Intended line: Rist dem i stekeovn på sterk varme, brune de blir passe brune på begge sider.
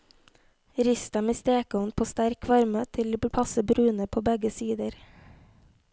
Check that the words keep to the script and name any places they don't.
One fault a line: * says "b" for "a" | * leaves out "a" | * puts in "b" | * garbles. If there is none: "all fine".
* says "til" for "brune"